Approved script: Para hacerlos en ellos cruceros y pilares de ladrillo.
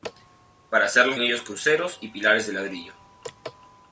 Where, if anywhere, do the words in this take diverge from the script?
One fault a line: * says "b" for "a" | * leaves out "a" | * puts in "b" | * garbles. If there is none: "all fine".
all fine